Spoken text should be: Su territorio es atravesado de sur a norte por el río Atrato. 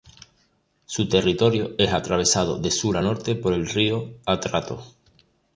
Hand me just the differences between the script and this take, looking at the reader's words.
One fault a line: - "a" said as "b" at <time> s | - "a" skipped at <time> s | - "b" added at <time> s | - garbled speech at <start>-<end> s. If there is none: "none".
none